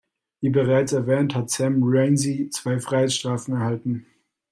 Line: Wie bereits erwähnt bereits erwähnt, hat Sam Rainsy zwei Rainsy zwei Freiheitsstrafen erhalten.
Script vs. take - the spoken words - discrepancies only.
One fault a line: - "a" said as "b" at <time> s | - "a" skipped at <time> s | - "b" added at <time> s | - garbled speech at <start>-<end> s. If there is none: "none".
- "bereits erwähnt" skipped at 1.4 s
- "Rainsy zwei" skipped at 2.8 s